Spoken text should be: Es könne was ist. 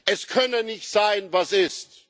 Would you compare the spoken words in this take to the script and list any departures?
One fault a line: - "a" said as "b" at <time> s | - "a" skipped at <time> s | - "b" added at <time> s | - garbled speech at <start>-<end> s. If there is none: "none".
- "nicht sein" added at 0.6 s